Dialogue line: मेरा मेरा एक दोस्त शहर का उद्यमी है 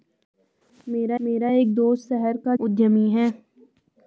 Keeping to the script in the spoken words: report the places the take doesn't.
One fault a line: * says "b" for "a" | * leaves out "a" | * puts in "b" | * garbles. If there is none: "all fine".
all fine